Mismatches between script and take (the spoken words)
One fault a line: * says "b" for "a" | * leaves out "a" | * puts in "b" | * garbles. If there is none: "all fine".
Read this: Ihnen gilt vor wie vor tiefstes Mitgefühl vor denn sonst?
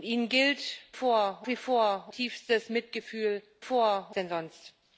all fine